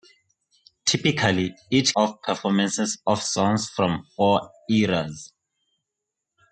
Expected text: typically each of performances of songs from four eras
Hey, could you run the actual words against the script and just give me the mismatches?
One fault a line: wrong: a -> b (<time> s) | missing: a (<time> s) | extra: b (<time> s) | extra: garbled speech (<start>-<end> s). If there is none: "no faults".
no faults